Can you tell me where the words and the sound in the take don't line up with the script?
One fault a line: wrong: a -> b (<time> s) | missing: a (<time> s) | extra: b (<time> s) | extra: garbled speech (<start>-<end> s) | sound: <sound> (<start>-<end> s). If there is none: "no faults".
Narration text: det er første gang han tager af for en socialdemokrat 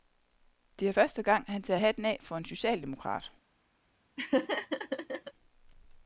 extra: hatten (1.8 s)
sound: laugh (4.2-5.3 s)